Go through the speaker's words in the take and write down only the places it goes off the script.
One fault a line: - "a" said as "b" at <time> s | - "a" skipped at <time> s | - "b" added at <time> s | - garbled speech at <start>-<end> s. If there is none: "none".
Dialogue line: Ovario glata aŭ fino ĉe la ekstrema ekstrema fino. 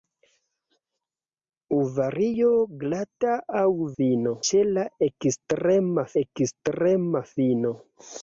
none